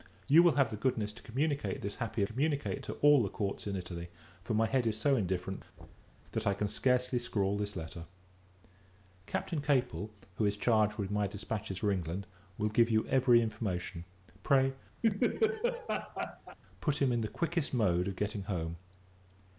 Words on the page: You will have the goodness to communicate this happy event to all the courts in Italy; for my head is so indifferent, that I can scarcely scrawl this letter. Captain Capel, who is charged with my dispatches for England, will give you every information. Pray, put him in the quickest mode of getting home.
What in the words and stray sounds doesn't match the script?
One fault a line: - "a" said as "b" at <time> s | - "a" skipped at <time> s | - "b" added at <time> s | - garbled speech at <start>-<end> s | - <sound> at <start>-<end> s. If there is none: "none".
- "event" said as "communicate" at 2.2 s
- thud at 5.8-6.2 s
- laugh at 15.0-16.6 s